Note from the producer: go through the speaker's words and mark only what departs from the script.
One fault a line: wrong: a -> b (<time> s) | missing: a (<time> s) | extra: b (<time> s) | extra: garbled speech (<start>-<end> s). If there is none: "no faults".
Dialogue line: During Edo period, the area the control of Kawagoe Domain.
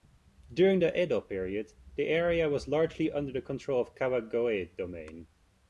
extra: the (0.8 s)
extra: was largely under (2.5 s)